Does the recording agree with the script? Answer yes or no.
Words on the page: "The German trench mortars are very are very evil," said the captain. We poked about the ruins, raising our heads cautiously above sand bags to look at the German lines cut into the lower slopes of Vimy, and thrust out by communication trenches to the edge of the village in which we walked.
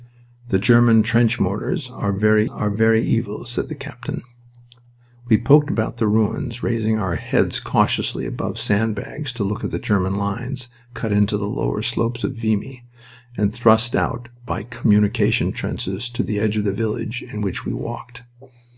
yes